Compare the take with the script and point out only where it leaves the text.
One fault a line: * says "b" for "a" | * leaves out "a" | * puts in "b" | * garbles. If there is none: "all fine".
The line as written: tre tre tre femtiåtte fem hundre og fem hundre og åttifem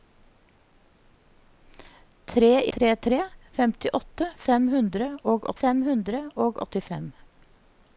all fine